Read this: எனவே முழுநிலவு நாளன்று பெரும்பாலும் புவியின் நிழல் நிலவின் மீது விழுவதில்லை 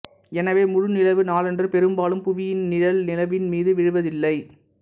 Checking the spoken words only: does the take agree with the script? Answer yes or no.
yes